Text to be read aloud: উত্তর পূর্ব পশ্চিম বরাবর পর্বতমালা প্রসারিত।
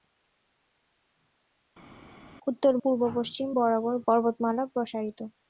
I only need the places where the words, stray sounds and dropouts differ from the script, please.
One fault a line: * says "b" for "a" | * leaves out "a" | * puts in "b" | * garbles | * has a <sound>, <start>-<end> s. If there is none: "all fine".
all fine